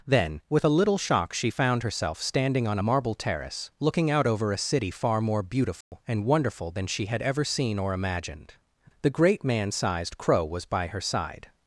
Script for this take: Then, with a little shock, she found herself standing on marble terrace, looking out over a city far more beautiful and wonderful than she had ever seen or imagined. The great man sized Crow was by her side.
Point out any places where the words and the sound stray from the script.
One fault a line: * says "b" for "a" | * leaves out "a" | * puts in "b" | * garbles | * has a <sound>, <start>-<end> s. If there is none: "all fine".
* has a dropout, 5.8-5.9 s